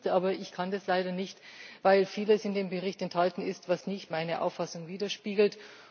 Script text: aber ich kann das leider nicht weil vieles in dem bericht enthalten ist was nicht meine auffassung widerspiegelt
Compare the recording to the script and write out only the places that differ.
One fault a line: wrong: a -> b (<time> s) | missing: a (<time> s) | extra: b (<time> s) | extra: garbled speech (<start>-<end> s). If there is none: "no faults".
no faults